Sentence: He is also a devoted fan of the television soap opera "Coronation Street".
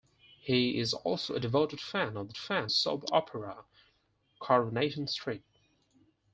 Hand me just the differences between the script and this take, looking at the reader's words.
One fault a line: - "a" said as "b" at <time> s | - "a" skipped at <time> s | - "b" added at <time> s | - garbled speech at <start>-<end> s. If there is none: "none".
- "television" said as "fan" at 2.4 s